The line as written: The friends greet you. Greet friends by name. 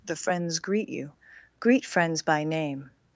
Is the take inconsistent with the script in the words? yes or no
no